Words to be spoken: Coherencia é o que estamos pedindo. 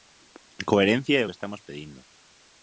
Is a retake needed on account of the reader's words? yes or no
no